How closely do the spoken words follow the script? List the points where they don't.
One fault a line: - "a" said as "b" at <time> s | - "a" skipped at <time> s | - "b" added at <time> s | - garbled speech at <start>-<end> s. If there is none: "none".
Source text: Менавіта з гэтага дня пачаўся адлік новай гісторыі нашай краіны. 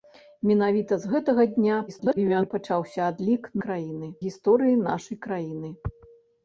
- garbled speech at 1.9-2.5 s
- "новай" said as "краіны" at 3.6 s